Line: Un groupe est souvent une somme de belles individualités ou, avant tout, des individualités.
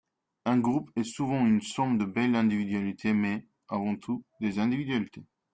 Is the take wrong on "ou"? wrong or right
wrong